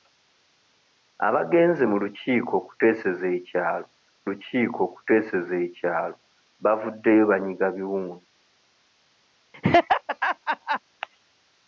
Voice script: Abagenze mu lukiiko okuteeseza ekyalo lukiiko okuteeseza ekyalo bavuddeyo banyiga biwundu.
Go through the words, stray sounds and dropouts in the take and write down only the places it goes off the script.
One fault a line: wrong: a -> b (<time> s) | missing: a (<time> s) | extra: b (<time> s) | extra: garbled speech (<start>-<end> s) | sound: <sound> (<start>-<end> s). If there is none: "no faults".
sound: laugh (9.5-10.8 s)